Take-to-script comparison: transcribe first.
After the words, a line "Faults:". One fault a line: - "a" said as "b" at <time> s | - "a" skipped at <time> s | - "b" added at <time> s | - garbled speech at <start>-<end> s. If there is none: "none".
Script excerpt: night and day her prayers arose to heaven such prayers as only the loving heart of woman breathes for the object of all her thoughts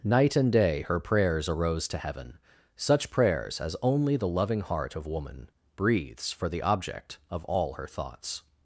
night and day her prayers arose to heaven such prayers as only the loving heart of woman breathes for the object of all her thoughts
Faults:
none